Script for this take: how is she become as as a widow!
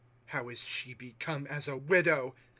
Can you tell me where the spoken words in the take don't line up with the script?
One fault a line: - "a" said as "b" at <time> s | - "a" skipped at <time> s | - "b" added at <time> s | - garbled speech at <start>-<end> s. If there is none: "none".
- "as" skipped at 1.7 s